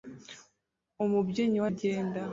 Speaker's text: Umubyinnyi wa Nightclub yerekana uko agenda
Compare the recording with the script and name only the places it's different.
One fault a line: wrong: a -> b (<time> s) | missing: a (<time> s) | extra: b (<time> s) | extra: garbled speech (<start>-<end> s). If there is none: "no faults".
missing: Nightclub yerekana uko (1.7 s)